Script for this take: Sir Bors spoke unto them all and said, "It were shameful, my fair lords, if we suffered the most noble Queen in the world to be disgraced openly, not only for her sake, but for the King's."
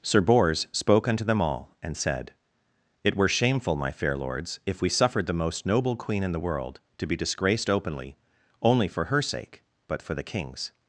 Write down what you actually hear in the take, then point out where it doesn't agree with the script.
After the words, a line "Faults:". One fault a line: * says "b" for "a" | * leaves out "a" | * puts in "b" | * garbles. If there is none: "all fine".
Sir Bors spoke unto them all and said, "It were shameful, my fair lords, if we suffered the most noble Queen in the world to be disgraced openly, only for her sake, but for the King's."
Faults:
* leaves out "not"